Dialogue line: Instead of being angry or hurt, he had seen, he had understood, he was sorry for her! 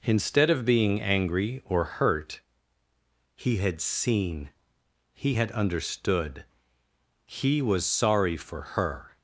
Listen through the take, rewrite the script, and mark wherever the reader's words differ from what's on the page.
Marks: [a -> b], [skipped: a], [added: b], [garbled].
Instead of being angry or hurt, he had seen, he had understood, he was sorry for her!